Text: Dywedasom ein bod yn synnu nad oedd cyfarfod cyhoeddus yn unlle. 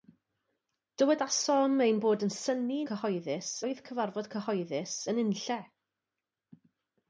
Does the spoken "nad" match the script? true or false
false